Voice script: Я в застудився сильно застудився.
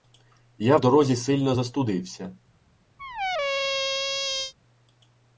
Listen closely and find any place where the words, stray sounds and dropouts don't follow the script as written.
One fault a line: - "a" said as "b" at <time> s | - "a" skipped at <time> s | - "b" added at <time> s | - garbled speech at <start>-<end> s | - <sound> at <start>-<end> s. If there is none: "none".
- "застудився" said as "дорозі" at 0.8 s
- squeak at 3.0-4.5 s